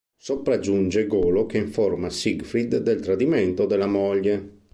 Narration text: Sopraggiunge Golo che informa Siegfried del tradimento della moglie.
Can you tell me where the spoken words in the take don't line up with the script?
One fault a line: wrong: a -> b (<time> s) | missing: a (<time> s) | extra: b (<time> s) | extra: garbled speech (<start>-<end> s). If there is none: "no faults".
no faults